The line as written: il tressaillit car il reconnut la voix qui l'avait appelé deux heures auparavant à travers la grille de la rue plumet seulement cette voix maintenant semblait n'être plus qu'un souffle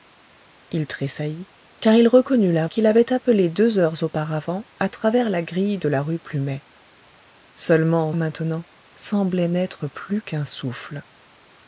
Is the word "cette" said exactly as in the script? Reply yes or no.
no